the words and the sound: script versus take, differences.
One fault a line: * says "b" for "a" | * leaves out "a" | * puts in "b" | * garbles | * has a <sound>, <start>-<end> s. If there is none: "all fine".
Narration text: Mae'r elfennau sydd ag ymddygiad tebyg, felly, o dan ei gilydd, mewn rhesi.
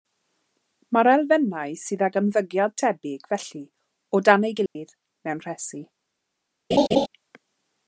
* has a dropout, 4.7-4.8 s
* has a laugh, 6.7-7.1 s